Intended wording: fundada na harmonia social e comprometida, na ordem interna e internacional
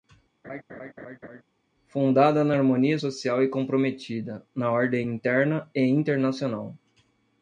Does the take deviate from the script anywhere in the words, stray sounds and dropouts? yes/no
yes